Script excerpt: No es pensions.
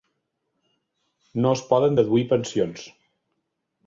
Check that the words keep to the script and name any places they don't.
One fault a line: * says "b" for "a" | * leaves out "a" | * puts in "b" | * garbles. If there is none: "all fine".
* puts in "poden deduir"